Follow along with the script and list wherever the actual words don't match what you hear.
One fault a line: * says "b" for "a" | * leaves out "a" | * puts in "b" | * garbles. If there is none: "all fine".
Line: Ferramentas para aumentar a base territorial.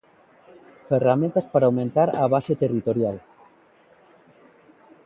all fine